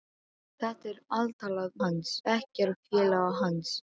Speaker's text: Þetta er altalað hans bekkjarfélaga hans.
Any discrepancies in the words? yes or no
no